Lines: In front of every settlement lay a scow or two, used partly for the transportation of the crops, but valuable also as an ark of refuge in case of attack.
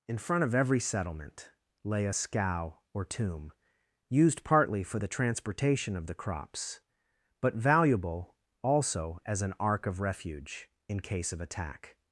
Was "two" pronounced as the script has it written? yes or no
no